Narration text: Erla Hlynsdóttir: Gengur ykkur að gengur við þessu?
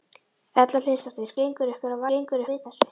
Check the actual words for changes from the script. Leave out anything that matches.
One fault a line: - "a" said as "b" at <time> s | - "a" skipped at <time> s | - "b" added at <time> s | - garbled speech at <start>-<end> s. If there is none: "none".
none